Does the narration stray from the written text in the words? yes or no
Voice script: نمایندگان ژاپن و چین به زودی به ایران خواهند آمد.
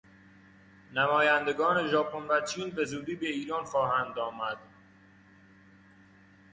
no